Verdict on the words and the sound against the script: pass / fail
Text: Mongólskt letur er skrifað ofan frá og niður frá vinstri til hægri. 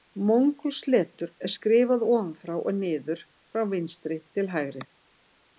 pass